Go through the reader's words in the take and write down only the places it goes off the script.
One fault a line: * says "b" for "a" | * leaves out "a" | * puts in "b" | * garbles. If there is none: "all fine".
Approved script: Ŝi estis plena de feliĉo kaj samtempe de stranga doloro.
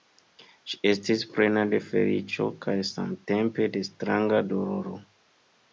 all fine